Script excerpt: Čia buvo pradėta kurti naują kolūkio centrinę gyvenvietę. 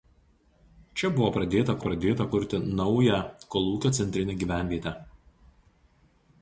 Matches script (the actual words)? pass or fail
fail